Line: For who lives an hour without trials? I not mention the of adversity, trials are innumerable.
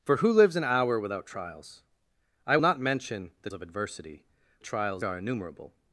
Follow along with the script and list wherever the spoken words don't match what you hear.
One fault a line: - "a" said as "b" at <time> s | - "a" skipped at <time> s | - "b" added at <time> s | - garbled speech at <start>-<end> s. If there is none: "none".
none